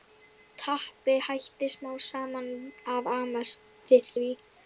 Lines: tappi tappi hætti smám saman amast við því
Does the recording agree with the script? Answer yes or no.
no